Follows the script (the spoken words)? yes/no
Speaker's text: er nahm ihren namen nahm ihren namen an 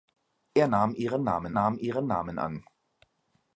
yes